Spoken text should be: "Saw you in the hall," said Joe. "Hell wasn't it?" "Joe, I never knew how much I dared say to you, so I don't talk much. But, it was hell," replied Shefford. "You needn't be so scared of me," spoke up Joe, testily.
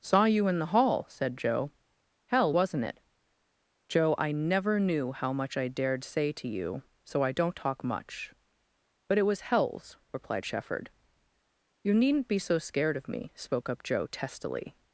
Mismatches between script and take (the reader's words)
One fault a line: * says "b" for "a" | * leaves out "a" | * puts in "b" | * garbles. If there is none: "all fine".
* says "hells" for "hell"